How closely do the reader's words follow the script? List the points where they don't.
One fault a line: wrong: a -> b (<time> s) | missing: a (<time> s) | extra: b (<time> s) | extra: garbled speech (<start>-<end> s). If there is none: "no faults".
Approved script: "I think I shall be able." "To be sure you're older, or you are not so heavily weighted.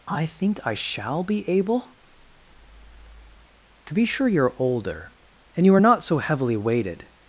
wrong: or -> and (5.5 s)